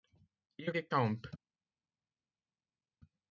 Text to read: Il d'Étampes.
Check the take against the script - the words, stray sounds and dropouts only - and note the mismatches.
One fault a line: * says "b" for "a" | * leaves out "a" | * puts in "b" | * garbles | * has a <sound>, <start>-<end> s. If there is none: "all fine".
all fine